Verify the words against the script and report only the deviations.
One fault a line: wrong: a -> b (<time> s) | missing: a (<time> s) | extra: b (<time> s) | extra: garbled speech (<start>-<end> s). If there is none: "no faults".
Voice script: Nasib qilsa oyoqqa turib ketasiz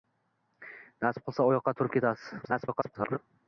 extra: garbled speech (2.4-3.2 s)